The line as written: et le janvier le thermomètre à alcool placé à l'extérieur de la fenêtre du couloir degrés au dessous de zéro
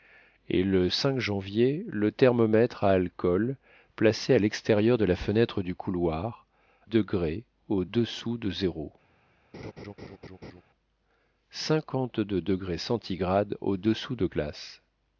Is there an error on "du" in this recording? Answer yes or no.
no